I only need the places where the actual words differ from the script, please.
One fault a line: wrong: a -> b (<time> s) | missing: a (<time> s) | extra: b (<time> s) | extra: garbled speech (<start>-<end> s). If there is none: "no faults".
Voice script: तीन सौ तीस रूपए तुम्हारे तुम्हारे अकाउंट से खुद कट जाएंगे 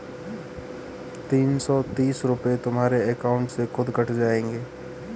missing: तुम्हारे (3.0 s)